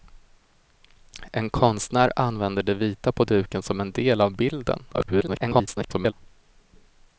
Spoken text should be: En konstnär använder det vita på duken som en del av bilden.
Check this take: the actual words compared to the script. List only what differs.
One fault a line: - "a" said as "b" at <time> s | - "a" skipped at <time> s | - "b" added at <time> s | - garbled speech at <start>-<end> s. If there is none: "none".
- garbled speech at 4.9-6.1 s